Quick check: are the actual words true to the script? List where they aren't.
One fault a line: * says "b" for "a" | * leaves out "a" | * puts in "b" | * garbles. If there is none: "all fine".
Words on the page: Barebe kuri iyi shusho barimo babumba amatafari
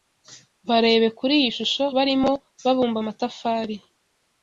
all fine